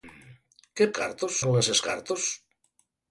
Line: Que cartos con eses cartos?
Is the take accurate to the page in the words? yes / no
yes